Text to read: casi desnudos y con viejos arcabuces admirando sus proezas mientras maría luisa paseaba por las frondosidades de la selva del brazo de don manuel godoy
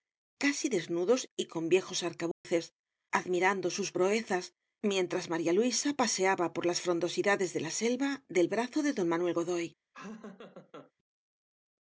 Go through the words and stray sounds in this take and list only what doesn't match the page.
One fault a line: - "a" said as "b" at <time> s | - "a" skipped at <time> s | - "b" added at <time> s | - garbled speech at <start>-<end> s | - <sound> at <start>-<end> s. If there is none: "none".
- dropout at 2.3-2.4 s
- laugh at 9.9-10.9 s